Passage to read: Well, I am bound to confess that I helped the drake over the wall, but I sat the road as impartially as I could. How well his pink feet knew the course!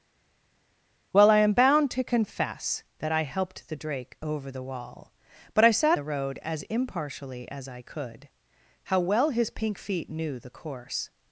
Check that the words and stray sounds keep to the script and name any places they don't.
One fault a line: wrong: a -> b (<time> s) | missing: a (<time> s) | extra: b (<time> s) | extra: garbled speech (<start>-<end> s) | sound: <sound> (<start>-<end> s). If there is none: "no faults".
no faults